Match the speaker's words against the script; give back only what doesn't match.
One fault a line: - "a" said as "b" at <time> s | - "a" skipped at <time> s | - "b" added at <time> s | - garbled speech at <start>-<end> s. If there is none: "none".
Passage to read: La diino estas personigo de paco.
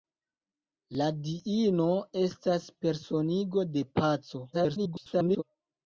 - garbled speech at 4.5-5.4 s